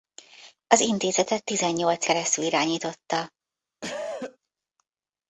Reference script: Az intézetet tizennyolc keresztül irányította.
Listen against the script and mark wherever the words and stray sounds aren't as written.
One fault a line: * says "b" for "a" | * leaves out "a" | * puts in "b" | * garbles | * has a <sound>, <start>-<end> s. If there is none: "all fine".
* has a cough, 3.8-4.4 s